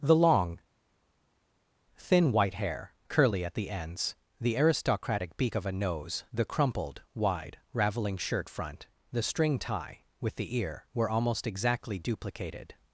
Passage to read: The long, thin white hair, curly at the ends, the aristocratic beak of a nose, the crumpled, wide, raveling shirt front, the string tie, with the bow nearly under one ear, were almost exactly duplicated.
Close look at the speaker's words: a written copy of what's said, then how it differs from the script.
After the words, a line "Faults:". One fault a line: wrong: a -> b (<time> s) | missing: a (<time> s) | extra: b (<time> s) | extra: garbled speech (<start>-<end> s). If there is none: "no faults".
The long, thin white hair, curly at the ends, the aristocratic beak of a nose, the crumpled, wide, raveling shirt front, the string tie, with the ear, were almost exactly duplicated.
Faults:
missing: bow nearly under one (10.6 s)